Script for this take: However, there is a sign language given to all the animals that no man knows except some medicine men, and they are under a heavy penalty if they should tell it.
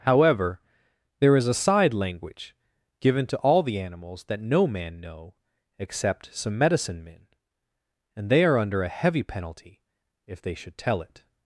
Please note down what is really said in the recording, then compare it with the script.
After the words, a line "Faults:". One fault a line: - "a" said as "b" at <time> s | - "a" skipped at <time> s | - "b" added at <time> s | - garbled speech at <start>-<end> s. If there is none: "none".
However, there is a side language given to all the animals that no man know except some medicine men, and they are under a heavy penalty if they should tell it.
Faults:
- "sign" said as "side" at 1.5 s
- "knows" said as "know" at 5.0 s